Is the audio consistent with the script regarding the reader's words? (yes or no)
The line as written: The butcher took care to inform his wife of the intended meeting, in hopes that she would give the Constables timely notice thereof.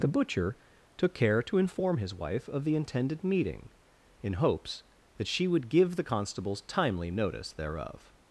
yes